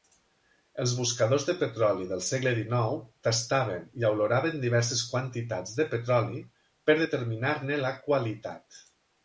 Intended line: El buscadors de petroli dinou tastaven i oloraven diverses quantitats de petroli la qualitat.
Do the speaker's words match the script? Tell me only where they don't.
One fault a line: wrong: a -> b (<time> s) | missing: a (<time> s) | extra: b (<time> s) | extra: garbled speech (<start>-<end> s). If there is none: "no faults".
wrong: El -> Els (0.8 s)
extra: del segle (2.1 s)
extra: per determinar ne (6.9 s)